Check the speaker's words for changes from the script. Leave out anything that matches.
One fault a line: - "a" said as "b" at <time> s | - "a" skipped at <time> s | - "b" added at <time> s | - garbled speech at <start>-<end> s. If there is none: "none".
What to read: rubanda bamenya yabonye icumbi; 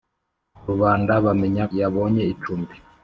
none